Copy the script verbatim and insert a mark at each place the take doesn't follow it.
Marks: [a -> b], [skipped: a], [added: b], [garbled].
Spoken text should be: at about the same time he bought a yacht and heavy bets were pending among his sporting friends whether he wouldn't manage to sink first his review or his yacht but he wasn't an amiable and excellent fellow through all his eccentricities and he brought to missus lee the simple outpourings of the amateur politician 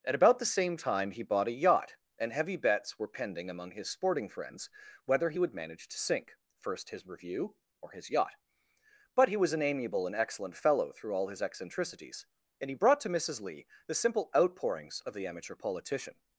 at about the same time he bought a yacht and heavy bets were pending among his sporting friends whether he [wouldn't -> would] manage to sink first his review or his yacht but he [wasn't -> was] an amiable and excellent fellow through all his eccentricities and he brought to missus lee the simple outpourings of the amateur politician